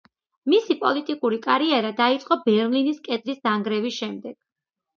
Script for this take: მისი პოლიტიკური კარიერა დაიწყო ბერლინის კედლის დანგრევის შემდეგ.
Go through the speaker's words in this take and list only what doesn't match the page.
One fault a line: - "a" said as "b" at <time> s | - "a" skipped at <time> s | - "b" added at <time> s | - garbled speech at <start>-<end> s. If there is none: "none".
none